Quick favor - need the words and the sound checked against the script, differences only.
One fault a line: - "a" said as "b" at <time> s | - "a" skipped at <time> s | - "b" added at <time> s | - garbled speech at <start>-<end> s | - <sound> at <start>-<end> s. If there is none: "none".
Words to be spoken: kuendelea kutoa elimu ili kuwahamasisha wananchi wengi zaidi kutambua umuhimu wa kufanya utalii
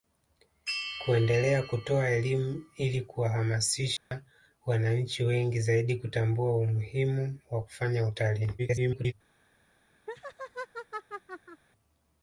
- dropout at 4.0-4.1 s
- garbled speech at 8.6-9.1 s
- laugh at 10.1-11.6 s